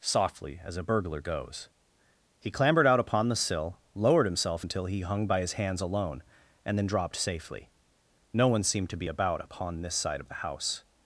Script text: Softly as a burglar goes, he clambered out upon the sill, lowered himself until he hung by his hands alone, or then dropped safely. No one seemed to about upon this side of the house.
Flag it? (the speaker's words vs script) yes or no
yes